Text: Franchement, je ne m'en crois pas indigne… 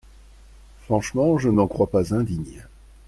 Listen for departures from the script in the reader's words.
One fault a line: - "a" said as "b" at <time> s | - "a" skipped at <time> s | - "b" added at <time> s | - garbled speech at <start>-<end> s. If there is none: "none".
none